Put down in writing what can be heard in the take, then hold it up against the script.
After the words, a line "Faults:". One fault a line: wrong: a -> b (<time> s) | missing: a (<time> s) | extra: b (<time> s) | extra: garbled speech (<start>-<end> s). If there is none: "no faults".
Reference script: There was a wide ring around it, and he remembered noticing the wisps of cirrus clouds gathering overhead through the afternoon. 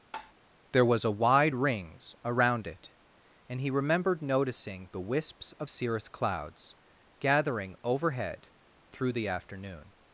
There was a wide rings around it, and he remembered noticing the wisps of cirrus clouds gathering overhead through the afternoon.
Faults:
wrong: ring -> rings (1.5 s)